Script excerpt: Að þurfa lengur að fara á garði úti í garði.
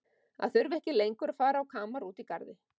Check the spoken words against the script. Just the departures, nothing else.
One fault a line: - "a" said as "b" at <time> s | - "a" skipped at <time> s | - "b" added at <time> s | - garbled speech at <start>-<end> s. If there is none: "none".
- "ekki" added at 0.8 s
- "garði" said as "kamar" at 1.8 s